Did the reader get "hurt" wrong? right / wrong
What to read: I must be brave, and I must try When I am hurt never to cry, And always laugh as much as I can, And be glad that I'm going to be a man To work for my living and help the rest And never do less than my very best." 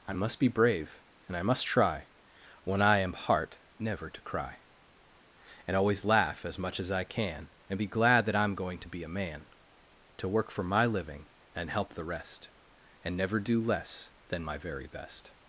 wrong